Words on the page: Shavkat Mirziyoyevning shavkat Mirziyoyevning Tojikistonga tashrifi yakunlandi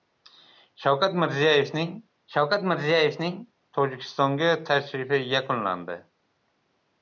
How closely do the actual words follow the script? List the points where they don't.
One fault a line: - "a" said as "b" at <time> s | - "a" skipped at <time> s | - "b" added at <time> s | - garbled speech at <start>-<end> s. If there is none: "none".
none